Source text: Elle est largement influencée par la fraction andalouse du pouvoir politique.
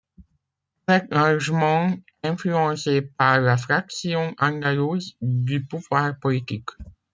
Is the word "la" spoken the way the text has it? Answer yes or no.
yes